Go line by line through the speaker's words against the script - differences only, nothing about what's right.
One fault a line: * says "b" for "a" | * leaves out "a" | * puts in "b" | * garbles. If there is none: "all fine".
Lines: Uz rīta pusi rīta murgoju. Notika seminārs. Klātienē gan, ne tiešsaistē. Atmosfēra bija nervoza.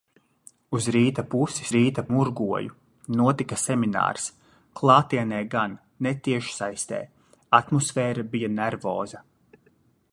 all fine